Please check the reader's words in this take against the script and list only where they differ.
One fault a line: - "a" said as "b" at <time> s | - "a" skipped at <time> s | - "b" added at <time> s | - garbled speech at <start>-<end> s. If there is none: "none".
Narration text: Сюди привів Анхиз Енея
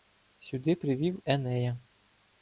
- "Анхиз" skipped at 1.2 s